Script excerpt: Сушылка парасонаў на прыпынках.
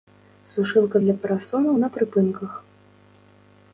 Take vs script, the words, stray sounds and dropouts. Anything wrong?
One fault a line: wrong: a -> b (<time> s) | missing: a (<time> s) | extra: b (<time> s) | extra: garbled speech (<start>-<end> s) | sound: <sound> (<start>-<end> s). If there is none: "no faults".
extra: для (1.0 s)